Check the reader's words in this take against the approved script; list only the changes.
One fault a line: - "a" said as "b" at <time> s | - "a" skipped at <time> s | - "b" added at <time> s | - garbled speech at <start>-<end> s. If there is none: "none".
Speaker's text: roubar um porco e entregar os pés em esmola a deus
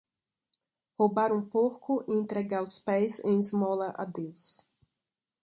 none